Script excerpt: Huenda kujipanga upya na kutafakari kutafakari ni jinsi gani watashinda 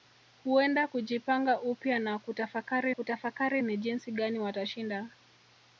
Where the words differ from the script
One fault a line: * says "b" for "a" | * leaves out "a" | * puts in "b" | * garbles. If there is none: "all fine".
all fine